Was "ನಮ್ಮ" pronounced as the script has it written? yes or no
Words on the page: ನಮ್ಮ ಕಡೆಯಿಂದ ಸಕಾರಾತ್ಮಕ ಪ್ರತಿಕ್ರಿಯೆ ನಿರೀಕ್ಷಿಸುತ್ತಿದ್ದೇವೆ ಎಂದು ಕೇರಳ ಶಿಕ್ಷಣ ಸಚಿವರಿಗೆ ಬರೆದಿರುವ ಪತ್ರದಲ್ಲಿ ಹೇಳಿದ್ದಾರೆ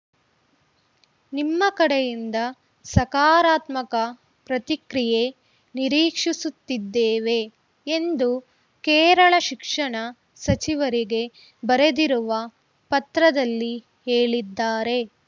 no